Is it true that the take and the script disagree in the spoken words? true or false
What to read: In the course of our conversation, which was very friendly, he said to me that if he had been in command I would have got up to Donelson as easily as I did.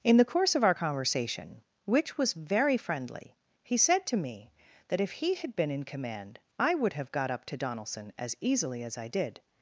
false